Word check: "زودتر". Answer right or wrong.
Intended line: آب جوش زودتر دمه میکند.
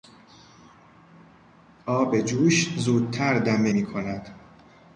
right